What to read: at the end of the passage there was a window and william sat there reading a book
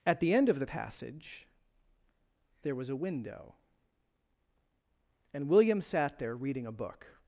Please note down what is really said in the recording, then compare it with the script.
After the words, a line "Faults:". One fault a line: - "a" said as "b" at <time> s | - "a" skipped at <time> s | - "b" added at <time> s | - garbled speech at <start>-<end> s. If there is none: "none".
at the end of the passage there was a window and william sat there reading a book
Faults:
none